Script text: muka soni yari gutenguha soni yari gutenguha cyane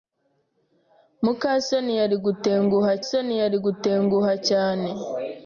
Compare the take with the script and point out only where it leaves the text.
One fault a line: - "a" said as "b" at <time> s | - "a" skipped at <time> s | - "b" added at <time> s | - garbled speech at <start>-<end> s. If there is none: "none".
none